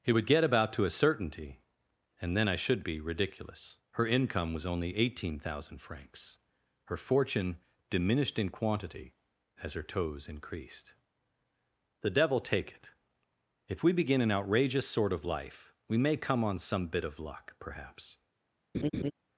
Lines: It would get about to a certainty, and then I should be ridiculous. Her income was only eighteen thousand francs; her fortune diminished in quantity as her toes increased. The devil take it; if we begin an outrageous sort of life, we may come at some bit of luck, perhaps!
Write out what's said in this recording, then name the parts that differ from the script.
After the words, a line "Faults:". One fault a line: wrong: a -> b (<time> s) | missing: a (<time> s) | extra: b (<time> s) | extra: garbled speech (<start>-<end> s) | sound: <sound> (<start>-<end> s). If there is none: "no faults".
It would get about to a certainty, and then I should be ridiculous. Her income was only eighteen thousand francs; her fortune diminished in quantity as her toes increased. The devil take it; if we begin an outrageous sort of life, we may come on some bit of luck, perhaps!
Faults:
wrong: at -> on (16.4 s)
sound: laugh (18.7-19.1 s)